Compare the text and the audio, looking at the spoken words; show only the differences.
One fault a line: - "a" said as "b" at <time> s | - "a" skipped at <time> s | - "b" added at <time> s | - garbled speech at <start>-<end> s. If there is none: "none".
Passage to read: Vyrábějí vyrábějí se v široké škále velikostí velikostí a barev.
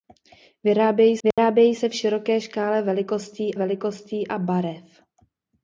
none